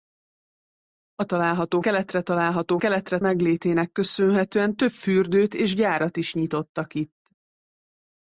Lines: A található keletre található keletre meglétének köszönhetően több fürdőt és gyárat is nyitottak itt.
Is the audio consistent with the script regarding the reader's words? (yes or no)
yes